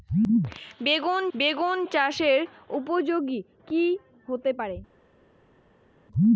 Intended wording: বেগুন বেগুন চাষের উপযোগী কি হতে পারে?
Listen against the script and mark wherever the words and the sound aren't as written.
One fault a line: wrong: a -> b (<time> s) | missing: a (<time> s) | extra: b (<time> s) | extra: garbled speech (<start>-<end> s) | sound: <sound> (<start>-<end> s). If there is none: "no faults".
no faults